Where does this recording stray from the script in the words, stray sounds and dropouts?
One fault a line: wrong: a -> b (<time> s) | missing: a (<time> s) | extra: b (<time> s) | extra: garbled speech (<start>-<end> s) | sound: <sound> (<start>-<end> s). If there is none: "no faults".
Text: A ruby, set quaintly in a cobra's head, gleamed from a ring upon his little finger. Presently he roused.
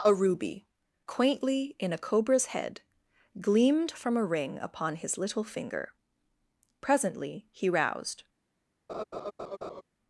missing: set (0.7 s)
sound: laugh (8.9-9.8 s)